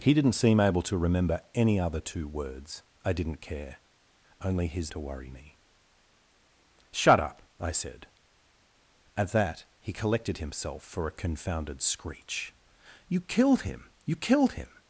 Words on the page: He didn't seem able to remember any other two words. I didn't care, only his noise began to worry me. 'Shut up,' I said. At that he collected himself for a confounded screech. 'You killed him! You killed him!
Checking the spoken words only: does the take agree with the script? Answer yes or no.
no